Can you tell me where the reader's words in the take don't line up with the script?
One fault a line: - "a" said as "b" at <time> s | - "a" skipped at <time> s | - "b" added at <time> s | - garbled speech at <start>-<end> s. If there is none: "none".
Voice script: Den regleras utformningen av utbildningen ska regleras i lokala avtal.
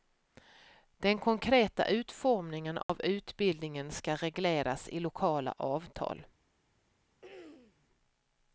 - "regleras" said as "konkreta" at 1.2 s